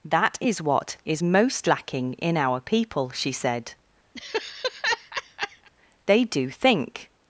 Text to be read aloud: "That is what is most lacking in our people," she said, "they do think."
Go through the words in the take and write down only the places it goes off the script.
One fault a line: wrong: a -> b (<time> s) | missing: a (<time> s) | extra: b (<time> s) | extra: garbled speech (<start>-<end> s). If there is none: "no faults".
no faults